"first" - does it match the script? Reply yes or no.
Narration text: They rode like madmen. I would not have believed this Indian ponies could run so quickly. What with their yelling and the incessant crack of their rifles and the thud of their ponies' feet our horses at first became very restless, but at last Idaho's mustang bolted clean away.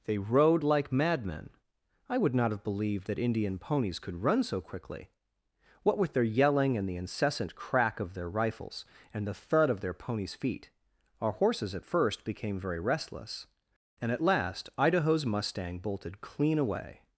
yes